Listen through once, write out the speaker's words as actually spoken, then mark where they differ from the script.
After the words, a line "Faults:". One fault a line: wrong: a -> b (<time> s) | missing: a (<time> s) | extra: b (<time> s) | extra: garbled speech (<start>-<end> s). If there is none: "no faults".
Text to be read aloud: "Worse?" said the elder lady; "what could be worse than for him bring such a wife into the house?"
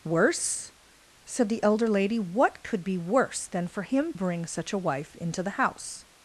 "Worse?" said the elder lady; "what could be worse than for him bring such a wife into the house?"
Faults:
no faults